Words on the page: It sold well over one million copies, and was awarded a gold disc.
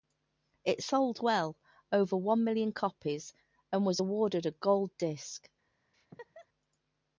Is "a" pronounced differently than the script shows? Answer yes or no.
no